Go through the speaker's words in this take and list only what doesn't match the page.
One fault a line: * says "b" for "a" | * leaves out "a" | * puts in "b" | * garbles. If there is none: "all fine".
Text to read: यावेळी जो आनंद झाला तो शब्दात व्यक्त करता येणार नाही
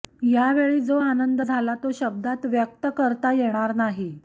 all fine